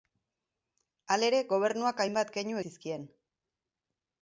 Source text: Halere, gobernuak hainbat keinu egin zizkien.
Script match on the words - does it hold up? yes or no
no